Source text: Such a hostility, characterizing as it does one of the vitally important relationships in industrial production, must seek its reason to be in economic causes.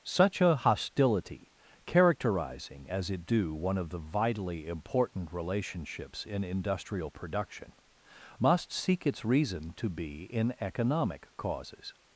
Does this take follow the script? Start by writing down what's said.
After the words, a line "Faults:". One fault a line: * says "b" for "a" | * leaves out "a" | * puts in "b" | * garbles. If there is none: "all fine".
Such a hostility, characterizing as it do one of the vitally important relationships in industrial production, must seek its reason to be in economic causes.
Faults:
* says "do" for "does"